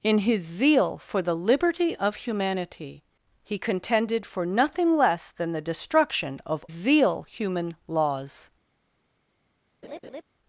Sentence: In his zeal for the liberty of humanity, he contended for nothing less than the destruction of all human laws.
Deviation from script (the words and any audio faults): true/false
true